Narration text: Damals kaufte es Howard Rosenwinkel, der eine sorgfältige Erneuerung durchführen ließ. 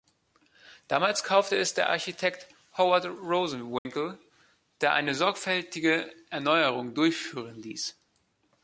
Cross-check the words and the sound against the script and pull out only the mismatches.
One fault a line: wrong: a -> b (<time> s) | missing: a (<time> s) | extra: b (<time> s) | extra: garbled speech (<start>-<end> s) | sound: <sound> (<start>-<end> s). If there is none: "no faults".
extra: der Architekt (1.8 s)
sound: dropout (3.8-3.9 s)